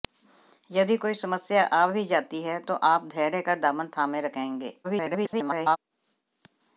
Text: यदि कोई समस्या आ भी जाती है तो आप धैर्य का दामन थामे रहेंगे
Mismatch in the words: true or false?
true